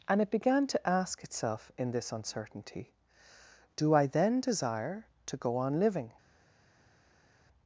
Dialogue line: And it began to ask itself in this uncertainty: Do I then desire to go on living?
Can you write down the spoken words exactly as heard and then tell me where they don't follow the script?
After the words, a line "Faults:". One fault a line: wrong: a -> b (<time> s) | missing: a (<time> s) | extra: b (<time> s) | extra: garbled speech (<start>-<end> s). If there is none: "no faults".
And it began to ask itself in this uncertainty: Do I then desire to go on living?
Faults:
no faults